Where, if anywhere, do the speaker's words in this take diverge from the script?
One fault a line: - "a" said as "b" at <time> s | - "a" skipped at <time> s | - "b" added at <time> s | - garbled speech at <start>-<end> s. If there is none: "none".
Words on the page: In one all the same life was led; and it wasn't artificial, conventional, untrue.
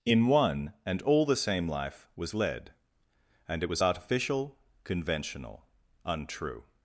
- "and" added at 0.8 s
- "wasn't" said as "was" at 3.7 s